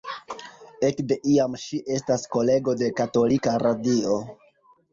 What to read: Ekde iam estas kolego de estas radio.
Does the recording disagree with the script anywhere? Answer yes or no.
yes